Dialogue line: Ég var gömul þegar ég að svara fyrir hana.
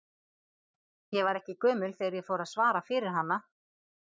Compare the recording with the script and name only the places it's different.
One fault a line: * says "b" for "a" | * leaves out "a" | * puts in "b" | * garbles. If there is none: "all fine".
* puts in "ekki"
* puts in "fór"